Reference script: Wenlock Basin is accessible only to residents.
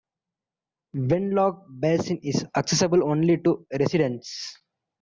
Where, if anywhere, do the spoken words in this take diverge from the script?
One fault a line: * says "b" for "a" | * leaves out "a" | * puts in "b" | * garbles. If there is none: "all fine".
all fine